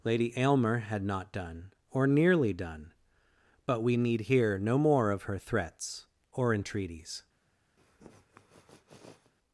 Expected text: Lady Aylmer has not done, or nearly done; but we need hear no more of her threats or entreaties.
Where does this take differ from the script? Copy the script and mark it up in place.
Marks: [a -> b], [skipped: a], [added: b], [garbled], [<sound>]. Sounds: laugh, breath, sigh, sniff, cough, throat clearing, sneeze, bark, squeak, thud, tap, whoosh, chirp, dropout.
Lady Aylmer [has -> had] not done, or nearly done; but we need hear no more of her threats or entreaties. [sniff]